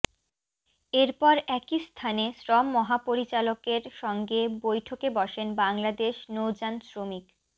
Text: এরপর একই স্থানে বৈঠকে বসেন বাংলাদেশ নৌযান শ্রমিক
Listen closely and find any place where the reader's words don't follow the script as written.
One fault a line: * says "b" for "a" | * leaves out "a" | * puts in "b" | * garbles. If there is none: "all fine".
* puts in "শ্রম মহাপরিচালকের সঙ্গে"